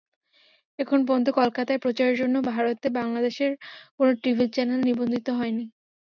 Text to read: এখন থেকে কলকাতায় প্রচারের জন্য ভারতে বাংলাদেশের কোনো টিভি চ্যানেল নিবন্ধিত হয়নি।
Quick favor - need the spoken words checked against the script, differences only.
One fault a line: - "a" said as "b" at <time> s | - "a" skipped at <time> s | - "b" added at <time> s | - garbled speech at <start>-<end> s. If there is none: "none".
- "থেকে" said as "পর্যন্ত" at 1.1 s